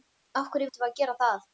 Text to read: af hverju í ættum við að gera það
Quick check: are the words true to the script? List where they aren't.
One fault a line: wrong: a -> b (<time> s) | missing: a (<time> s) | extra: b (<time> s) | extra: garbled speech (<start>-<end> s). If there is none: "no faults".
no faults